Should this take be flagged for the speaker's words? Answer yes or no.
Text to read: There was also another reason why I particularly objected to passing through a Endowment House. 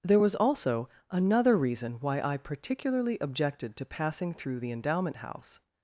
yes